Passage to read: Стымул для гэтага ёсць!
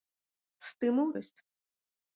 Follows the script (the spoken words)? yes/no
no